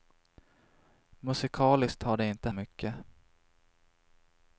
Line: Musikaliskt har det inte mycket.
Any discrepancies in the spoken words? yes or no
no